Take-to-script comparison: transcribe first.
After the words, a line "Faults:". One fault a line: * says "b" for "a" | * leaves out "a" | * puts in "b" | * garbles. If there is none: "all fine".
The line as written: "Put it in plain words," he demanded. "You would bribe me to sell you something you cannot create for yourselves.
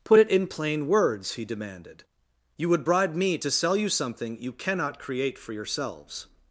"Put it in plain words," he demanded. "You would bribe me to sell you something you cannot create for yourselves.
Faults:
all fine